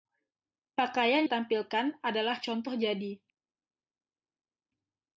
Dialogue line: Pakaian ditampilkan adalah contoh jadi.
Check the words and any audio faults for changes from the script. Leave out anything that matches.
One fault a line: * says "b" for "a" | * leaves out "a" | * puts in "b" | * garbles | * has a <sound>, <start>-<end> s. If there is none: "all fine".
all fine